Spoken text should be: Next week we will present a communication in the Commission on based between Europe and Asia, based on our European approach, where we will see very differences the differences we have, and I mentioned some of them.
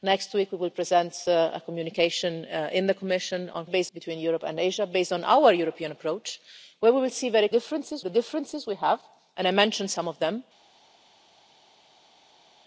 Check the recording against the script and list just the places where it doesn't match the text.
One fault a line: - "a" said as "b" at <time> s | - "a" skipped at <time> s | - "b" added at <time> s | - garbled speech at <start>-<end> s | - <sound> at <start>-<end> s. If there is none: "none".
none